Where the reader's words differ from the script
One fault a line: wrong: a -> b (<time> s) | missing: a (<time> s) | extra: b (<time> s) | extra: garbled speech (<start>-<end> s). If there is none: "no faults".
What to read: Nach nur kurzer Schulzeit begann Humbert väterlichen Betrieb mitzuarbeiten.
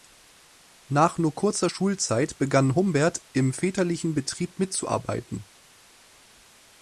extra: im (3.3 s)